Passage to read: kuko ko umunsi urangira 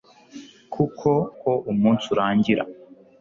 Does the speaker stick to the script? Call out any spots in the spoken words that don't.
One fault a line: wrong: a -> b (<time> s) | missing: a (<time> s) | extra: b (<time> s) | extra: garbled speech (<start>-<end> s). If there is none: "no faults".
no faults